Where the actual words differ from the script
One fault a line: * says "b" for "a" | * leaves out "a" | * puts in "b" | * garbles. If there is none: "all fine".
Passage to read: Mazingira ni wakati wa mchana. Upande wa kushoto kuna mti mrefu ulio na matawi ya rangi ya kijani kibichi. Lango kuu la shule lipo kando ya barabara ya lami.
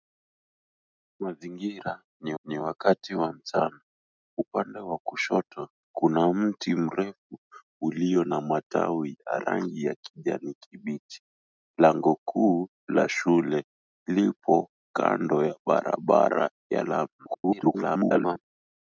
* puts in "ni"
* garbles